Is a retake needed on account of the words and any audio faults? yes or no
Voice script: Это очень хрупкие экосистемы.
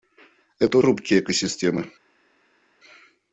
yes